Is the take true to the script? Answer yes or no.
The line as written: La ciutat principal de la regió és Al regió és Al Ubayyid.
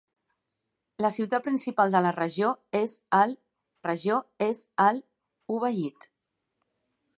yes